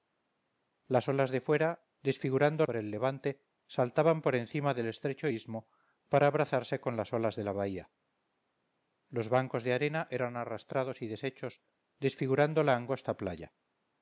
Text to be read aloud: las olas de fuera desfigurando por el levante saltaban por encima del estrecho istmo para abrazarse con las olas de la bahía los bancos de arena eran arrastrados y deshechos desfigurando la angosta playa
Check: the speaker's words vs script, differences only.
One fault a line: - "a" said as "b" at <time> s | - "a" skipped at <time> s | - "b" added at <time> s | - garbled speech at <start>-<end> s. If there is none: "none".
none